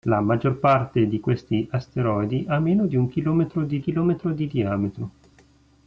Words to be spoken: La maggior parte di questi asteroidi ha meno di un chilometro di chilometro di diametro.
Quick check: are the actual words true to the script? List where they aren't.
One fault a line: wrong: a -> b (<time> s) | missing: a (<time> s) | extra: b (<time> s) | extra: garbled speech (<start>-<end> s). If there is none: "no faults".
no faults